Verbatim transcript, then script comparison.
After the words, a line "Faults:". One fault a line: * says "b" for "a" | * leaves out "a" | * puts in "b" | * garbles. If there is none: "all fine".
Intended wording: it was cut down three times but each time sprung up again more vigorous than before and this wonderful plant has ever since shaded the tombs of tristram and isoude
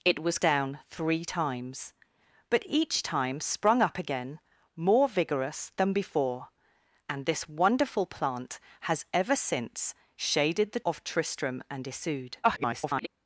it was down three times but each time sprung up again more vigorous than before and this wonderful plant has ever since shaded the of tristram and isoude [garbled]
Faults:
* leaves out "cut"
* leaves out "tombs"
* garbles